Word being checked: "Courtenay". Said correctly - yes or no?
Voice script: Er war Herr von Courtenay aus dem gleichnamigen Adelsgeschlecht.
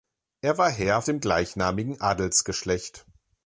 no